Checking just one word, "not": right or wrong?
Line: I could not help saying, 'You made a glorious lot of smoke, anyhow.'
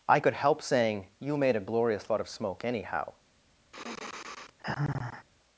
wrong